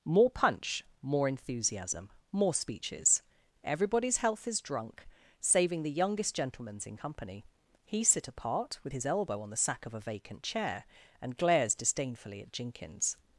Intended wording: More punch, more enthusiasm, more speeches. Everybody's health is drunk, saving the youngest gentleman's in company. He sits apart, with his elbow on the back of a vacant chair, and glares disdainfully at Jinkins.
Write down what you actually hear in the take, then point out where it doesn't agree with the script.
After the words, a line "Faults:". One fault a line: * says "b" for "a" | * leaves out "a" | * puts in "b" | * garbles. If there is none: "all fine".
More punch, more enthusiasm, more speeches. Everybody's health is drunk, saving the youngest gentleman's in company. He sit apart, with his elbow on the sack of a vacant chair, and glares disdainfully at Jinkins.
Faults:
* says "sit" for "sits"
* says "sack" for "back"